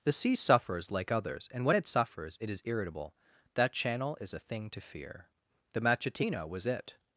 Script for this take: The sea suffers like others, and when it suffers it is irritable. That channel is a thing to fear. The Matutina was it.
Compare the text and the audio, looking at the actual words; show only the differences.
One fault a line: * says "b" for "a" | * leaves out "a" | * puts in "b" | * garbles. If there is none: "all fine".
all fine